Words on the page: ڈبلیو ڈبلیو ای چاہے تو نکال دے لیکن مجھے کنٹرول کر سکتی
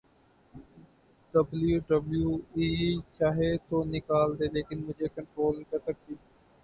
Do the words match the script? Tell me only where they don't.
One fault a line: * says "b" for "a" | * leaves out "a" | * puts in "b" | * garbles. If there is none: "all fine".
all fine